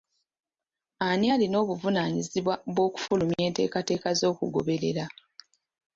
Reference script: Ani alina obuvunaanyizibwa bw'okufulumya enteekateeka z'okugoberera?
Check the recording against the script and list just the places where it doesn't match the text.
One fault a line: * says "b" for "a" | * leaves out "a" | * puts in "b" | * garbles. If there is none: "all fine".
all fine